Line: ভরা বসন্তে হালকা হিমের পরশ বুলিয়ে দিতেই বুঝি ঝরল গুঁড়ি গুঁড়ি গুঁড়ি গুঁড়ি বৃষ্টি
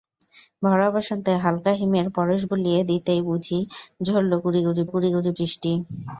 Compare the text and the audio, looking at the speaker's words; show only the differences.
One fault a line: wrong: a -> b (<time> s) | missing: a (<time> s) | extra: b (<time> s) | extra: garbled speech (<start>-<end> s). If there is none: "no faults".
no faults